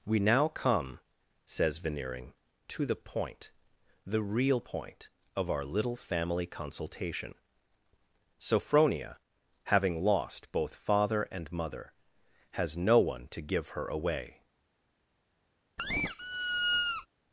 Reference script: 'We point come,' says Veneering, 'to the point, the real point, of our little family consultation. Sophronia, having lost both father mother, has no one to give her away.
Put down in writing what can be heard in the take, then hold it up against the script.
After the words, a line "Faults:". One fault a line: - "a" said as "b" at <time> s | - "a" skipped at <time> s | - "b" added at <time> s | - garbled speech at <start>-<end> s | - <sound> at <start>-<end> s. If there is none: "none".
'We now come,' says Veneering, 'to the point, the real point, of our little family consultation. Sophronia, having lost both father and mother, has no one to give her away.
Faults:
- "point" said as "now" at 0.2 s
- "and" added at 11.2 s
- squeak at 15.8-17.1 s